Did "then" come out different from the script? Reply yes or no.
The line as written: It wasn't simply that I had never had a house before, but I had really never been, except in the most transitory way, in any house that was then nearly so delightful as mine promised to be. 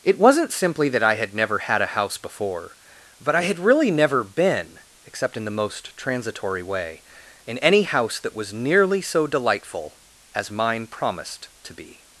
yes